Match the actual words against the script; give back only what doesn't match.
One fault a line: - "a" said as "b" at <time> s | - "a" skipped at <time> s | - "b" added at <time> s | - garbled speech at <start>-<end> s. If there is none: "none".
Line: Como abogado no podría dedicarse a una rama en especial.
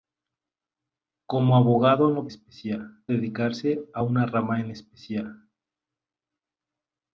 - "podría" said as "especial" at 2.3 s